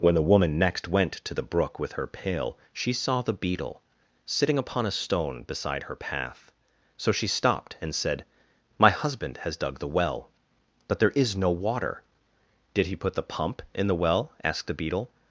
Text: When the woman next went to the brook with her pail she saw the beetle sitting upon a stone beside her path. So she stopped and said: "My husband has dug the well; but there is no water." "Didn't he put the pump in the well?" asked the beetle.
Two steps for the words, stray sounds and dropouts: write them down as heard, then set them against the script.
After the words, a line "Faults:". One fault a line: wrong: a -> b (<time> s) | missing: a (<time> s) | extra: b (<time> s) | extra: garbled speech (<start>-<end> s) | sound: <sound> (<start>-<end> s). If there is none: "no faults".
When the woman next went to the brook with her pail she saw the beetle sitting upon a stone beside her path. So she stopped and said: "My husband has dug the well; but there is no water." "Did he put the pump in the well?" asked the beetle.
Faults:
wrong: Didn't -> Did (12.7 s)